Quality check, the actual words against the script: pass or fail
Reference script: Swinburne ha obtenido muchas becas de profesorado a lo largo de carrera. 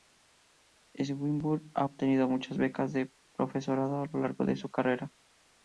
fail